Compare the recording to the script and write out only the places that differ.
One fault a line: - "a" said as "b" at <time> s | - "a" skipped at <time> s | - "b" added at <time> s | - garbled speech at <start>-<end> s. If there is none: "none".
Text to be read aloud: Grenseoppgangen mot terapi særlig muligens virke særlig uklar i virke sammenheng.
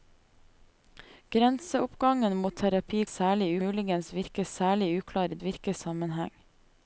none